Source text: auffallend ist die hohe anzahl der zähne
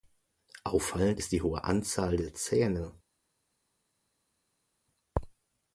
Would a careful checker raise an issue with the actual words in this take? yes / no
no